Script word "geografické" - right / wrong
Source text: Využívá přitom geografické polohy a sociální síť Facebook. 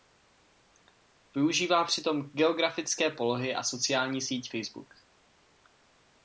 right